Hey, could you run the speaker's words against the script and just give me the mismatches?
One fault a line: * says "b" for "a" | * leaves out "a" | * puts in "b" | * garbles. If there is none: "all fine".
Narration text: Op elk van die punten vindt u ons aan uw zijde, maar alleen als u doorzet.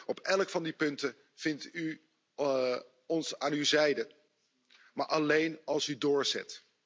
all fine